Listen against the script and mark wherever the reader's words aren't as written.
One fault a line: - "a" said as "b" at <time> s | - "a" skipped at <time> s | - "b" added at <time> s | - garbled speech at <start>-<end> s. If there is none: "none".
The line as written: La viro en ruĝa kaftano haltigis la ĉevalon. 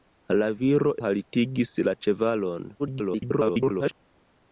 - "en ruĝa kaftano" skipped at 0.9 s
- garbled speech at 2.8-3.9 s